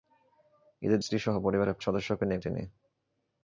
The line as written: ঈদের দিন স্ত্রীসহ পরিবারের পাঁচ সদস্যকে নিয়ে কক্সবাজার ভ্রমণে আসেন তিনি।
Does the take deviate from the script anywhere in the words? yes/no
yes